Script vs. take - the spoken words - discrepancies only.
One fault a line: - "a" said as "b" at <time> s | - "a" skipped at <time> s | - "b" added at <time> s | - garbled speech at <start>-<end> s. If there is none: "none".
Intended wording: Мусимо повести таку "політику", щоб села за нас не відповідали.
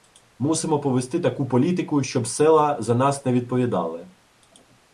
none